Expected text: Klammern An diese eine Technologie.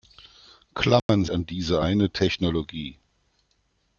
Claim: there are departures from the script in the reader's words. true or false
false